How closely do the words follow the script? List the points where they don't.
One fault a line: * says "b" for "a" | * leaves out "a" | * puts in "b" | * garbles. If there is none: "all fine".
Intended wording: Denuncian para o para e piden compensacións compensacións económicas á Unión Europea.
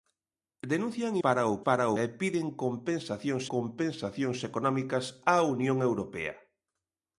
all fine